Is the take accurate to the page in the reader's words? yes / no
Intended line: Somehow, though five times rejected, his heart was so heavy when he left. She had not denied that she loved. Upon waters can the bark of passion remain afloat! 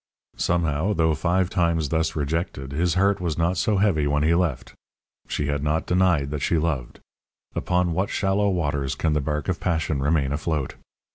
no